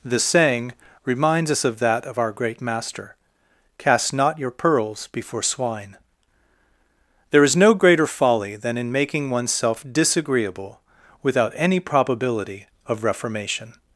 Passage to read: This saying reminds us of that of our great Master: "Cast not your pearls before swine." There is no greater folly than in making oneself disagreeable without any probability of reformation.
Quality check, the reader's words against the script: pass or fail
pass